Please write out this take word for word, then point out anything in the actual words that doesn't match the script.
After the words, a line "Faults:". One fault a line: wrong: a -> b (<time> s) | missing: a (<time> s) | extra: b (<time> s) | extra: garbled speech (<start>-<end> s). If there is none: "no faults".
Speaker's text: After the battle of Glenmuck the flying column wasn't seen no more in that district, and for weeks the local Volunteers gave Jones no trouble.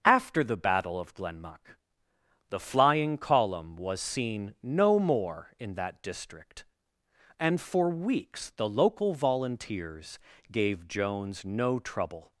After the battle of Glenmuck the flying column was seen no more in that district, and for weeks the local Volunteers gave Jones no trouble.
Faults:
wrong: wasn't -> was (3.8 s)